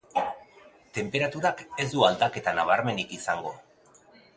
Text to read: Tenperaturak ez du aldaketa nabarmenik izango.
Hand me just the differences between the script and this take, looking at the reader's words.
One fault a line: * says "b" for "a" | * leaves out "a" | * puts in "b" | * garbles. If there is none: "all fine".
all fine